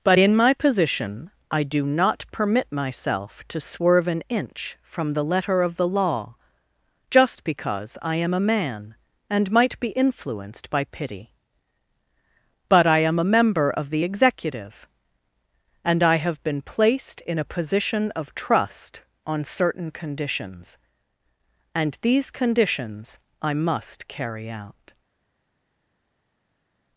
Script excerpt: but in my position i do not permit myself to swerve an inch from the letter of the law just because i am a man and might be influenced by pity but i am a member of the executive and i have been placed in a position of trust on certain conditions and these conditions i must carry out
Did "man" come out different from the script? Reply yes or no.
no